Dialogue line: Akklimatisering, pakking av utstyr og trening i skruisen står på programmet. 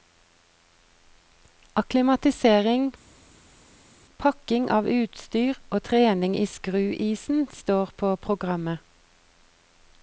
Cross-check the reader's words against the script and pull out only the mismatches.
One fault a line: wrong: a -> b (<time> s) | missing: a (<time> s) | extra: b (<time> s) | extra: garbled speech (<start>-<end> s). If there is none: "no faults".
no faults